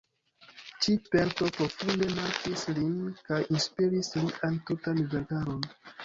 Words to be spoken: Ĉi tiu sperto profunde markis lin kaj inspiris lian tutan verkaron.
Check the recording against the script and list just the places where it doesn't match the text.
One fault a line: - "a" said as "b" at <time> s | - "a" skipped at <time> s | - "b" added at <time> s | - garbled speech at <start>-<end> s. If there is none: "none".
- "tiu" skipped at 0.9 s